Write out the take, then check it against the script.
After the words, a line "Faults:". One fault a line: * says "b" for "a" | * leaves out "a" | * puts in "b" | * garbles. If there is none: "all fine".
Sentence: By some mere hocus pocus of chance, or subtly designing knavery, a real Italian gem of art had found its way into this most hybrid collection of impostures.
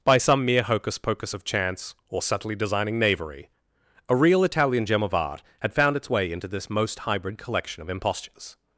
By some mere hocus pocus of chance, or subtly designing knavery, a real Italian gem of art had found its way into this most hybrid collection of impostures.
Faults:
all fine